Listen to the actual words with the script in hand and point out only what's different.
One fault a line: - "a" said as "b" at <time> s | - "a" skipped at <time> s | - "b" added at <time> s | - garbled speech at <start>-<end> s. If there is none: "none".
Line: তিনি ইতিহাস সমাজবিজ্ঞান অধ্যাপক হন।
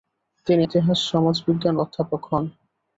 none